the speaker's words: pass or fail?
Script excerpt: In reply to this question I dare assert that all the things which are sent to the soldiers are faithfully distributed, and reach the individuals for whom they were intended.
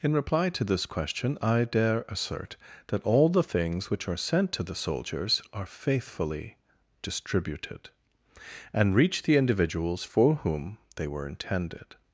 pass